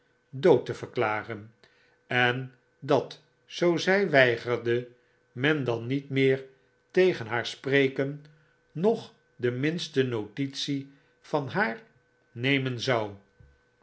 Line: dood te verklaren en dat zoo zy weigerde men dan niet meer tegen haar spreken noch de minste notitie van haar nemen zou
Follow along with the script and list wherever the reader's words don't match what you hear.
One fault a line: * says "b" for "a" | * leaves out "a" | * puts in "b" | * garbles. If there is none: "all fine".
all fine